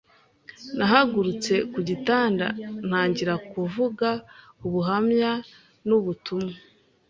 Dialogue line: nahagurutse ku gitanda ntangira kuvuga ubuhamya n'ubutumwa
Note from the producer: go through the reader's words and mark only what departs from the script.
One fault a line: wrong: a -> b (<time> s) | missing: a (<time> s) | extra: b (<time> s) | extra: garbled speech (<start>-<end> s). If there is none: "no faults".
no faults